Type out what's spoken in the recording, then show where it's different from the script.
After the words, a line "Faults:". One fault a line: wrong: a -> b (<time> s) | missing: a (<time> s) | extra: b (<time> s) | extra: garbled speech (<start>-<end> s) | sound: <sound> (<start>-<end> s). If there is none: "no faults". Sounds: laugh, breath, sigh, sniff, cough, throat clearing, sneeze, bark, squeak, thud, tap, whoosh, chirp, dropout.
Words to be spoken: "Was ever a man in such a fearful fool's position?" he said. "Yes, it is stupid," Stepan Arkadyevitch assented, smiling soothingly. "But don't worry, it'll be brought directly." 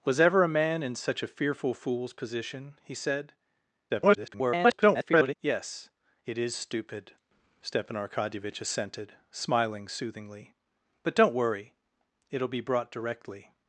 "Was ever a man in such a fearful fool's position?" he said. [garbled] "Yes, it is stupid," Stepan Arkadyevitch assented, smiling soothingly. "But don't worry, it'll be brought directly."
Faults:
extra: garbled speech (3.9-5.4 s)